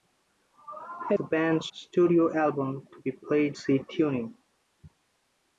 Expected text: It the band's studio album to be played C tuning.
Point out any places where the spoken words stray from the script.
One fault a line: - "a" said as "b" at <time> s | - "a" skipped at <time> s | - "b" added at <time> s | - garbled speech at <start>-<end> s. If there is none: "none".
none